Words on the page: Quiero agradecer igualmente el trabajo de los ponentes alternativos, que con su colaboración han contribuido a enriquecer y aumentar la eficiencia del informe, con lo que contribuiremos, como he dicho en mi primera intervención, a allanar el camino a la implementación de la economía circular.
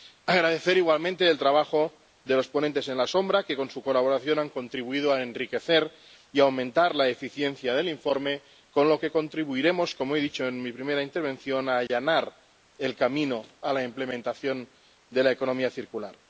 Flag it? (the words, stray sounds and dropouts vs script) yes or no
yes